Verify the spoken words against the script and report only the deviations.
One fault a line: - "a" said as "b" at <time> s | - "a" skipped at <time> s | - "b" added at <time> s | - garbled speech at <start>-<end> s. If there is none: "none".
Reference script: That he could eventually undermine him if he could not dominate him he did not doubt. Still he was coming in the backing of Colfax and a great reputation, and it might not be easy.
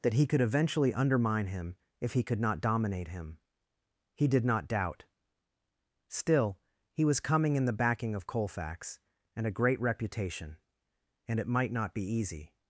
none